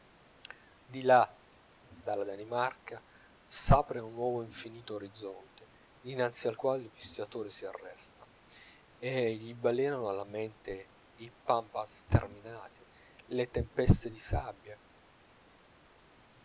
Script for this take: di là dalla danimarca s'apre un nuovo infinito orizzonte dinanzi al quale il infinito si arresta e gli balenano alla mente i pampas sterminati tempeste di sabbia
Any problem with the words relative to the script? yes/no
yes